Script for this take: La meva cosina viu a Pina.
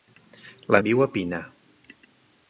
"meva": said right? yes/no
no